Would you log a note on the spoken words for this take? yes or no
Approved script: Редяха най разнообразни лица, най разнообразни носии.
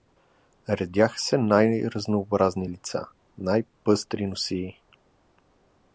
yes